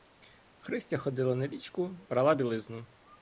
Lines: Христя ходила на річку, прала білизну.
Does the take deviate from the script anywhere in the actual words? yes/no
no